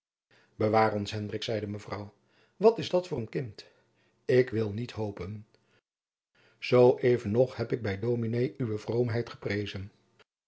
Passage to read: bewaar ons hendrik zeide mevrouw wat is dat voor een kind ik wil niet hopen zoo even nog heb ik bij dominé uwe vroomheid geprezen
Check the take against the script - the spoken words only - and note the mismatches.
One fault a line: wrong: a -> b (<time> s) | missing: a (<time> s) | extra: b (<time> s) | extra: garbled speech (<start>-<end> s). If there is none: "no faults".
no faults